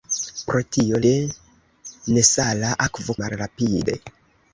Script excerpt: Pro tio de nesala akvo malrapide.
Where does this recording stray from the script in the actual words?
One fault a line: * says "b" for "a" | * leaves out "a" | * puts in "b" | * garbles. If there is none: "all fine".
all fine